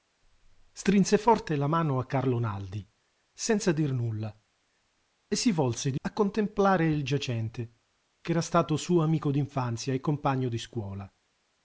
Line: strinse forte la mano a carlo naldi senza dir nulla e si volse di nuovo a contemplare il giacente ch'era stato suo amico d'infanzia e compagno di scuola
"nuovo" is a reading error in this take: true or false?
true